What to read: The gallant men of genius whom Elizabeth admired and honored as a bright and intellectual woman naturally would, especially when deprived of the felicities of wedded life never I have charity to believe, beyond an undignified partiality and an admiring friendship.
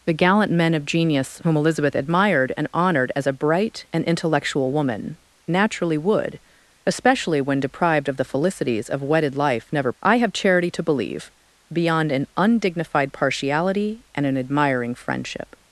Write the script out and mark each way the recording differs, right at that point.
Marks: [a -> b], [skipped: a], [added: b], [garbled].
The gallant men of genius whom Elizabeth admired and honored as a bright and intellectual woman naturally would, especially when deprived of the felicities of wedded life never I have charity to believe, beyond an undignified partiality and an admiring friendship.